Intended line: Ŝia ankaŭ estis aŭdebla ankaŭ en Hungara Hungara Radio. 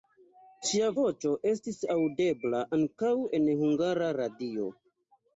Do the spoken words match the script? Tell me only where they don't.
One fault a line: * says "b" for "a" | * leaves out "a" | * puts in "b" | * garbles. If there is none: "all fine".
* says "voĉo" for "ankaŭ"
* leaves out "Hungara"